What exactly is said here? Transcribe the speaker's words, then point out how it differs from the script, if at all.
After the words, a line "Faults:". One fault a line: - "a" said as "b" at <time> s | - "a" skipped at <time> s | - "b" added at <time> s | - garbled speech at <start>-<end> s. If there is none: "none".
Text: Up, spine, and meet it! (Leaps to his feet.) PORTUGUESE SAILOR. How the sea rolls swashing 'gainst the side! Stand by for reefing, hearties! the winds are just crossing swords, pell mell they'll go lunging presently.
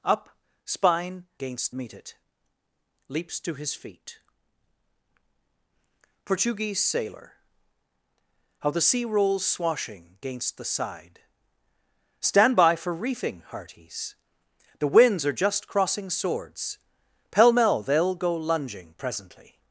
Up, spine, gainst meet it! (Leaps to his feet.) PORTUGUESE SAILOR. How the sea rolls swashing 'gainst the side! Stand by for reefing, hearties! the winds are just crossing swords, pell mell they'll go lunging presently.
Faults:
- "and" said as "gainst" at 1.4 s